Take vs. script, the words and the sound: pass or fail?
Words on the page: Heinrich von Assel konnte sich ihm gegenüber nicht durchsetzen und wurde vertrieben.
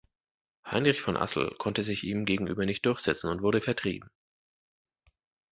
pass